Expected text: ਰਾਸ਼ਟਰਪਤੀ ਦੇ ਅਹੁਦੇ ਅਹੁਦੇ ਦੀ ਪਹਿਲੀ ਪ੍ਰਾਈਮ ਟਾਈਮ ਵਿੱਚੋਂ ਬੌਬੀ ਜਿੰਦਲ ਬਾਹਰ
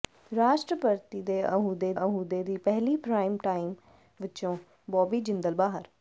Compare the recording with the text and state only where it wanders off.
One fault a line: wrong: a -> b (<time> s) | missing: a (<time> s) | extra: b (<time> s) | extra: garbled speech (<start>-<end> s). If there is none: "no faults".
no faults